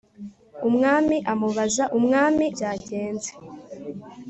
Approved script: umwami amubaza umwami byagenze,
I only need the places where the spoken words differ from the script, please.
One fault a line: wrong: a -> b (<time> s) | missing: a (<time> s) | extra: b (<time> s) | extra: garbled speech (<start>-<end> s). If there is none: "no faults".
no faults